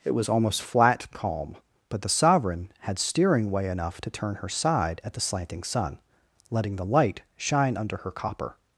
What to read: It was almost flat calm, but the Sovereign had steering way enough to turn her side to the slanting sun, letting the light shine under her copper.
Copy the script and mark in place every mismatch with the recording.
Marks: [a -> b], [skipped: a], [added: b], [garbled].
It was almost flat calm, but the Sovereign had steering way enough to turn her side [to -> at] the slanting sun, letting the light shine under her copper.